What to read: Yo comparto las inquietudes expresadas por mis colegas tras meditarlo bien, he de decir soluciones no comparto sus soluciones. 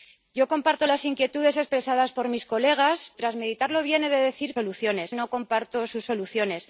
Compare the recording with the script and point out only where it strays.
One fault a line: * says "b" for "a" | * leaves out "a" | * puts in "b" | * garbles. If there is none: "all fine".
all fine